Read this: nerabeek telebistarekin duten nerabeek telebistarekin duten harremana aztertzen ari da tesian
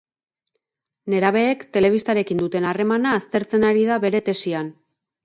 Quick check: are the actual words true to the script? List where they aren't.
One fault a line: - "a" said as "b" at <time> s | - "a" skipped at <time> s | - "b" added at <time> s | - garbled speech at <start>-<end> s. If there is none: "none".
- "nerabeek telebistarekin duten" skipped at 2.6 s
- "bere" added at 4.1 s